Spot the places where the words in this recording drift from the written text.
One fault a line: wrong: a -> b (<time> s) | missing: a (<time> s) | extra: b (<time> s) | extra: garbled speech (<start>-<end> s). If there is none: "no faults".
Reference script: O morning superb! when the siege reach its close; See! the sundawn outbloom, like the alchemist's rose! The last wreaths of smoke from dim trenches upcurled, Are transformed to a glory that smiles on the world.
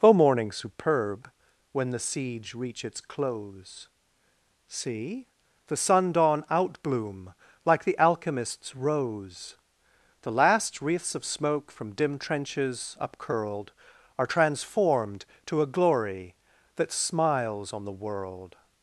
no faults